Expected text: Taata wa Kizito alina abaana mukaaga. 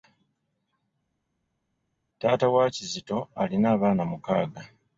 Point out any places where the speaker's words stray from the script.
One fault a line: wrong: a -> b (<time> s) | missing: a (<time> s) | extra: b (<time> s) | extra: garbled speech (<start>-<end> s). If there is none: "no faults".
no faults